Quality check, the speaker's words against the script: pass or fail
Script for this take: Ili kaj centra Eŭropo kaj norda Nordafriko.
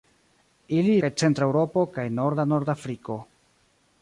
pass